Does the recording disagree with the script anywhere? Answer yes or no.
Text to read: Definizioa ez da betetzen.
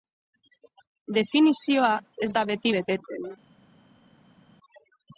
yes